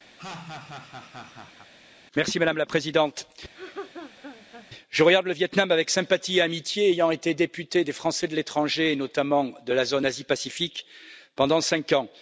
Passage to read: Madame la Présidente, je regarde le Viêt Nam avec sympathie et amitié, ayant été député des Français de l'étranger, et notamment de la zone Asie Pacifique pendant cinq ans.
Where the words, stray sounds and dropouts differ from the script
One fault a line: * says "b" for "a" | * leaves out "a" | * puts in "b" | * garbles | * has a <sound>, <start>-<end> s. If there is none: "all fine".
* has a laugh, 0.2-1.7 s
* has a laugh, 3.5-4.7 s